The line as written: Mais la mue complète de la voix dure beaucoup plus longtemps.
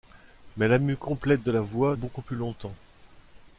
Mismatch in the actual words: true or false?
true